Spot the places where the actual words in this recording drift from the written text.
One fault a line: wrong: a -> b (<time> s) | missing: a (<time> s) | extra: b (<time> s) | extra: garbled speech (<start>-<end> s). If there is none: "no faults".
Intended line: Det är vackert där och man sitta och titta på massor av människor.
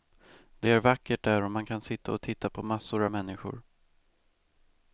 extra: kan (1.6 s)